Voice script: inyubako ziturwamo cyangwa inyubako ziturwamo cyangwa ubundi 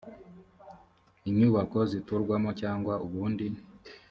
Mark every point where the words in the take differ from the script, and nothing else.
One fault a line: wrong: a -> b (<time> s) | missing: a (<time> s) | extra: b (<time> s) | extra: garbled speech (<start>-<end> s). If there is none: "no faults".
missing: inyubako ziturwamo cyangwa (2.9 s)